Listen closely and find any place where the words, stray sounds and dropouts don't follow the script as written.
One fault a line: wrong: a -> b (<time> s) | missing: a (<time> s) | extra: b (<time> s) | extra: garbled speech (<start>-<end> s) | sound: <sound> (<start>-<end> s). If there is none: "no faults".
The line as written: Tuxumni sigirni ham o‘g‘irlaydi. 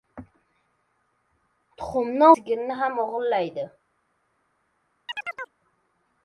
sound: chirp (5.1-5.6 s)